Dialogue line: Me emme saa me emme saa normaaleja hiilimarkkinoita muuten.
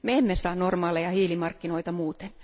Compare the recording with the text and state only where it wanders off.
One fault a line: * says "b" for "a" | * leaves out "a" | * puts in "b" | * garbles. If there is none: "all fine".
* leaves out "me emme saa"